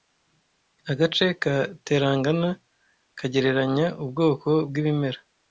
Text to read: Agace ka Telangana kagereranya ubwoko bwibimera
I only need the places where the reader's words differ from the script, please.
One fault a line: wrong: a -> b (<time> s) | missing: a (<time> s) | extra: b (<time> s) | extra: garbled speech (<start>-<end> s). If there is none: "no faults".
no faults